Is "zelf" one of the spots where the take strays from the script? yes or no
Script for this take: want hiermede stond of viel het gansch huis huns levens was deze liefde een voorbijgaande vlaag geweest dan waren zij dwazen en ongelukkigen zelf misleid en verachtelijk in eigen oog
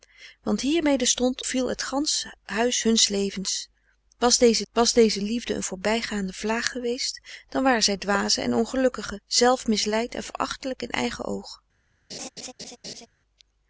no